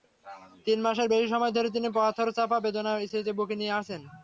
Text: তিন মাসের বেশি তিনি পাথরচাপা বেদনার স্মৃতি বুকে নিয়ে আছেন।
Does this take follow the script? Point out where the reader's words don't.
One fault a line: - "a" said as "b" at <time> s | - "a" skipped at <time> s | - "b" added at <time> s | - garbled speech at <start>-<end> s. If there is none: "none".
- "সময় ধরে" added at 1.3 s